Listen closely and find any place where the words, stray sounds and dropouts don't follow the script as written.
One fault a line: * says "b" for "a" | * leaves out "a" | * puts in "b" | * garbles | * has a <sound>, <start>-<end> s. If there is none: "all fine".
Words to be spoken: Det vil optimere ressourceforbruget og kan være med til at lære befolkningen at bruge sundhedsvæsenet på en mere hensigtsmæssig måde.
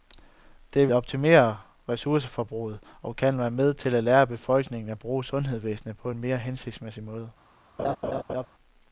* leaves out "vil"
* has a laugh, 7.8-8.5 s